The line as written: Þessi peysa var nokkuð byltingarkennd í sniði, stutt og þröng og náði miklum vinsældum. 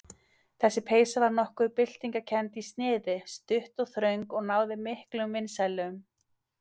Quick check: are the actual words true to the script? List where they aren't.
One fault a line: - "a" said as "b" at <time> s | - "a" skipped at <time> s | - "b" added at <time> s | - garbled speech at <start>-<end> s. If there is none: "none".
none